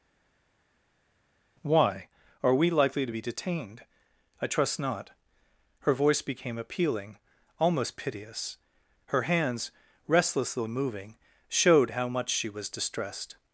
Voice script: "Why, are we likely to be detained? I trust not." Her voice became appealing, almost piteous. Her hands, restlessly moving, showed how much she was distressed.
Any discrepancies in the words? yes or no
no